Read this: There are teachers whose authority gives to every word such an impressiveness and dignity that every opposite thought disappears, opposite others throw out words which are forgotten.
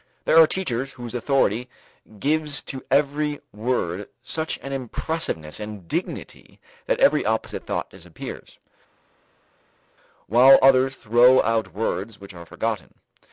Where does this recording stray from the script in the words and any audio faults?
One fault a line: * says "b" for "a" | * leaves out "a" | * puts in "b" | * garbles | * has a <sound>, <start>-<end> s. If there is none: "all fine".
* says "while" for "opposite"